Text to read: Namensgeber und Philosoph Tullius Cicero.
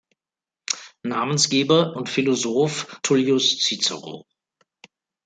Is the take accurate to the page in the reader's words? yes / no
yes